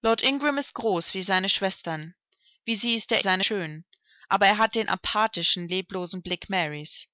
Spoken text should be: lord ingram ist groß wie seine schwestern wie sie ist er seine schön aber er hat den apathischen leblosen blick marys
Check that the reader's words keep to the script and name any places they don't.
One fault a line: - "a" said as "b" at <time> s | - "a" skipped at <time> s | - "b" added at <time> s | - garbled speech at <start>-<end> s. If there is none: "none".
none